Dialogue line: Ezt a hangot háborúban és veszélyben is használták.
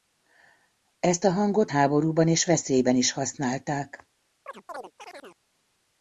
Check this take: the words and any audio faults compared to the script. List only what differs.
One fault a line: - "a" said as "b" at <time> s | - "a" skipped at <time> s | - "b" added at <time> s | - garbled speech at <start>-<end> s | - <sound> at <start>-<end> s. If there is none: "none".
- chirp at 4.5-5.4 s